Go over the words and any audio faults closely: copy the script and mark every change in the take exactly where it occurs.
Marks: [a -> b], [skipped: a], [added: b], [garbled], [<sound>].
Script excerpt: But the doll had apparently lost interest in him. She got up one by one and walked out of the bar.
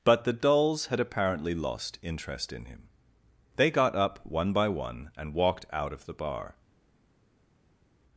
But the [doll -> dolls] had apparently lost interest in him. [She -> They] got up one by one and walked out of the bar.